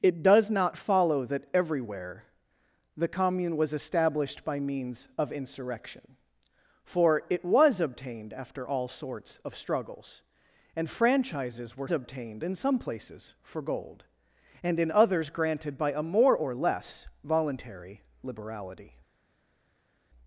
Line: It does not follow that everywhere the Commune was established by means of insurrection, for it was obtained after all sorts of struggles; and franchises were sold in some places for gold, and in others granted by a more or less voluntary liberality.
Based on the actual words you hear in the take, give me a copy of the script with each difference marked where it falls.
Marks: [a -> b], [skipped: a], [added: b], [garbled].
It does not follow that everywhere the Commune was established by means of insurrection, for it was obtained after all sorts of struggles; and franchises were [sold -> obtained] in some places for gold, and in others granted by a more or less voluntary liberality.